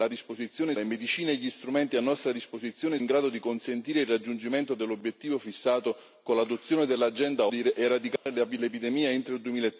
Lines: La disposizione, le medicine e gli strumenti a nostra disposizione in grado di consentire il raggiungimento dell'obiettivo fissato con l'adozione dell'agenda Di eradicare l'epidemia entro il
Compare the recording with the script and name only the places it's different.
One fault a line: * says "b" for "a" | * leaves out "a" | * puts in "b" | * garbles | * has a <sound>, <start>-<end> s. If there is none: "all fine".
* has a dropout, 8.2-8.3 s